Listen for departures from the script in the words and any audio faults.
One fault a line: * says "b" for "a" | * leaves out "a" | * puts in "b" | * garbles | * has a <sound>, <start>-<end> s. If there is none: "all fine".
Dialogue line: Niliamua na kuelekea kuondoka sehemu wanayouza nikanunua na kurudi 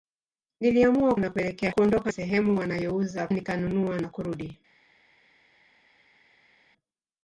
all fine